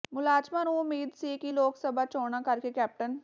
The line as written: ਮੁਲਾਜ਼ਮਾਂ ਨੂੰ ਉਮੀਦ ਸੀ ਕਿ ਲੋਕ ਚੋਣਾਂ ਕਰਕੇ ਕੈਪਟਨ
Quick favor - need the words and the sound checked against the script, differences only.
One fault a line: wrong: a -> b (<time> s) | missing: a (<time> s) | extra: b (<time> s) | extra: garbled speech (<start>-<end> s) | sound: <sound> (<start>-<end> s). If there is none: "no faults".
extra: ਸਭਾ (1.8 s)